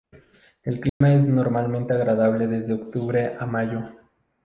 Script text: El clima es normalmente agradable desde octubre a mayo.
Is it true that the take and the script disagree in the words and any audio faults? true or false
true